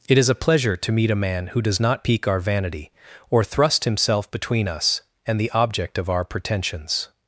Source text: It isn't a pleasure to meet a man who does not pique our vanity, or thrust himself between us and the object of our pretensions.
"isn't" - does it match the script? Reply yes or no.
no